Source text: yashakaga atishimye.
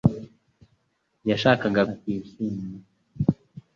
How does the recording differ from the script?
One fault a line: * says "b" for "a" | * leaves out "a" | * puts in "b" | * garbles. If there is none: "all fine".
all fine